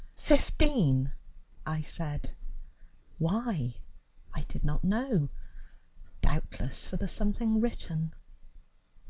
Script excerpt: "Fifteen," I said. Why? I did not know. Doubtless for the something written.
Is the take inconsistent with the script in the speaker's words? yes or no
no